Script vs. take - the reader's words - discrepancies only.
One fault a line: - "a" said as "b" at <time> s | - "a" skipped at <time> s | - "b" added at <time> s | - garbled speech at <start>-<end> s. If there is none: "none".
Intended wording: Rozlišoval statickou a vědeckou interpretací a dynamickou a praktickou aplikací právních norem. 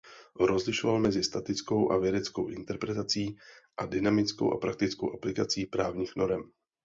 - "mezi" added at 1.0 s